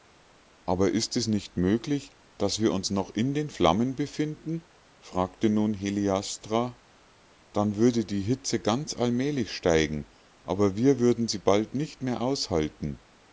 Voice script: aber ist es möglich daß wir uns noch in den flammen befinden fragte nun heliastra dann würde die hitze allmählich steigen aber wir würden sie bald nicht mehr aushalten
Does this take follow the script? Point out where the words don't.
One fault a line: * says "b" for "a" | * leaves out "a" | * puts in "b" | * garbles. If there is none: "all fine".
* puts in "nicht"
* puts in "ganz"